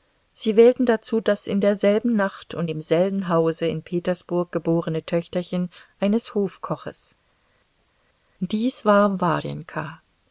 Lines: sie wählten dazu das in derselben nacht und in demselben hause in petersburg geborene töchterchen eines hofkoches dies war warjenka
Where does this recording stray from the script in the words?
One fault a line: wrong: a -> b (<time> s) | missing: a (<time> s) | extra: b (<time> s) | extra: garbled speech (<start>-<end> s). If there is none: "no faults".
missing: in (2.7 s)